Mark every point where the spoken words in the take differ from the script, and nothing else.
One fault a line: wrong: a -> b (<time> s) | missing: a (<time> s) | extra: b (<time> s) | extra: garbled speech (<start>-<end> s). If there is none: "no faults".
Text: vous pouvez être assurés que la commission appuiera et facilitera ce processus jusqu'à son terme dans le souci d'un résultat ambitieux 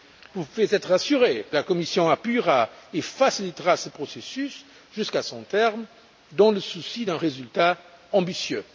no faults